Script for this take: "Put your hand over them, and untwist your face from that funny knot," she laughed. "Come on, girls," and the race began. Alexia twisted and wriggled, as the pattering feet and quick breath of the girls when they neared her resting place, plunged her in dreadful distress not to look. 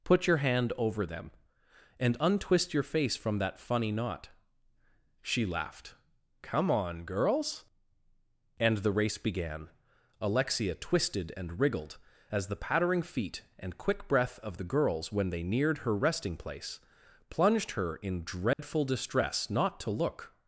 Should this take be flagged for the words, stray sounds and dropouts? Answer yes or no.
yes